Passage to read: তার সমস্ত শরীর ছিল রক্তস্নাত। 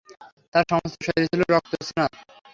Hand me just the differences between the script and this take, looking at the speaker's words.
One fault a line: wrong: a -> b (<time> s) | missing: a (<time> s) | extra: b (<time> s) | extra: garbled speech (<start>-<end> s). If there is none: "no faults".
no faults